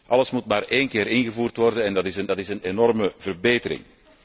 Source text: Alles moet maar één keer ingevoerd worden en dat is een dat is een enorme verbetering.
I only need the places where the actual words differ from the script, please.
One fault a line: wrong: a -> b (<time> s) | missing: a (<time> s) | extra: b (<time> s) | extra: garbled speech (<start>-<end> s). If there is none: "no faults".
no faults